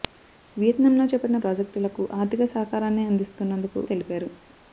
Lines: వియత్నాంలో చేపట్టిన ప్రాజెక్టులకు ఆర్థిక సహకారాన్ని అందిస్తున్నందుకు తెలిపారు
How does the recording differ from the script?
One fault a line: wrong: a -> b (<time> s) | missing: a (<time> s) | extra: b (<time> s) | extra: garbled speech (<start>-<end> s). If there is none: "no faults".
no faults